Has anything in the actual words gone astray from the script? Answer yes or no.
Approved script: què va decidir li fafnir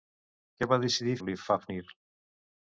no